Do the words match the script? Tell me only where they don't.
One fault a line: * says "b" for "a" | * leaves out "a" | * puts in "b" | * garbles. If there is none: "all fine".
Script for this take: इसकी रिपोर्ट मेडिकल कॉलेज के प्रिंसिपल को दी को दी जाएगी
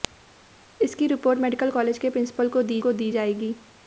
all fine